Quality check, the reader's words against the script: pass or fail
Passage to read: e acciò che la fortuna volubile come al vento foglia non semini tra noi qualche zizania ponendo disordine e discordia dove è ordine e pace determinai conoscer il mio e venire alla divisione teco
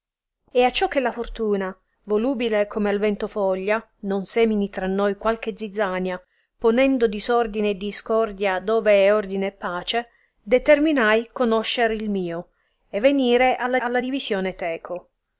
fail